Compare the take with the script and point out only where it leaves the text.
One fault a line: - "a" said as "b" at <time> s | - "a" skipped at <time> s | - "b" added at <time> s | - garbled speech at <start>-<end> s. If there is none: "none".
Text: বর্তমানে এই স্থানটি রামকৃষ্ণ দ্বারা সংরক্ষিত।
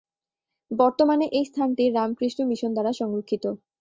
- "মিশন" added at 2.5 s